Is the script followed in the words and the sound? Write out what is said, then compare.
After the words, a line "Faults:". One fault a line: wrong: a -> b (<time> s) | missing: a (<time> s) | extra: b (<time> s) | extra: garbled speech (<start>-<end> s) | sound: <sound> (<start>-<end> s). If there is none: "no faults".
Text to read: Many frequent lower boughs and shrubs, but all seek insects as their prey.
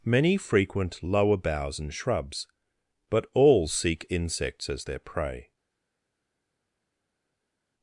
Many frequent lower boughs and shrubs, but all seek insects as their prey.
Faults:
no faults